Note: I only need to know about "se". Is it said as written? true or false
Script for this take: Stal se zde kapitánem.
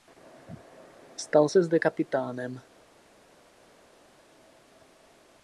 true